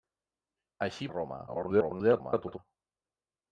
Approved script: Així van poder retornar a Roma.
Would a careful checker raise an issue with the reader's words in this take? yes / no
yes